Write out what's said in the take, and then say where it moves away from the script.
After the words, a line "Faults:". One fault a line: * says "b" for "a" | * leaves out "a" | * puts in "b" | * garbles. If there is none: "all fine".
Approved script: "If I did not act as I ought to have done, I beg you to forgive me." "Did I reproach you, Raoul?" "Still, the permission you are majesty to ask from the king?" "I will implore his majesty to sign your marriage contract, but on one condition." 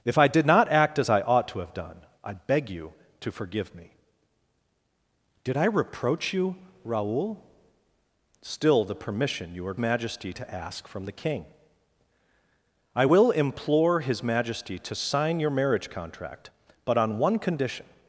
"If I did not act as I ought to have done, I beg you to forgive me." "Did I reproach you, Raoul?" "Still, the permission you are majesty to ask from the king?" "I will implore his majesty to sign your marriage contract, but on one condition."
Faults:
all fine